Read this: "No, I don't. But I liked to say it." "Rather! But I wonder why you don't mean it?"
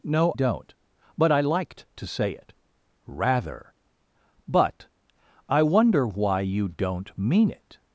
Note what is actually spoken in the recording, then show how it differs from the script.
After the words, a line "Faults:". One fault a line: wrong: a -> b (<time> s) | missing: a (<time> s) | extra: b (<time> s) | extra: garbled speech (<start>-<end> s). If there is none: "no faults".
"No, don't. But I liked to say it." "Rather! But I wonder why you don't mean it?"
Faults:
missing: I (0.3 s)